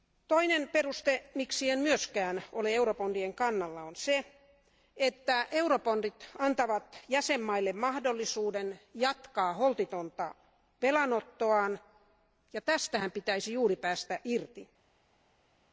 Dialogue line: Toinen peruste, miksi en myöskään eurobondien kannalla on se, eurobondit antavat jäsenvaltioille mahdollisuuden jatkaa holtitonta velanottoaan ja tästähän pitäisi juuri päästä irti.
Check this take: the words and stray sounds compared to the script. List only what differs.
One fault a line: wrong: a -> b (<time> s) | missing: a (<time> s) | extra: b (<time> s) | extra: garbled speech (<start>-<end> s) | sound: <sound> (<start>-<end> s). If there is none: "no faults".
extra: ole (2.5 s)
extra: että (5.0 s)